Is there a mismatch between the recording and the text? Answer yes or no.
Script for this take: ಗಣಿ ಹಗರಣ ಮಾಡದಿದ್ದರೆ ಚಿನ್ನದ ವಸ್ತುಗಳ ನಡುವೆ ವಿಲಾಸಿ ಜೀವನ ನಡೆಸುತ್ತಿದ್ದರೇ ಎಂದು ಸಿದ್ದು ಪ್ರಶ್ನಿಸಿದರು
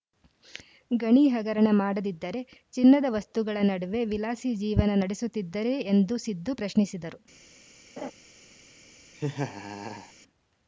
no